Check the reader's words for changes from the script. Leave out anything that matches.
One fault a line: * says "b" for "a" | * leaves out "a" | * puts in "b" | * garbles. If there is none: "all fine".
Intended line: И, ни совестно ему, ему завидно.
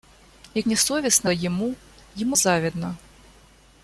all fine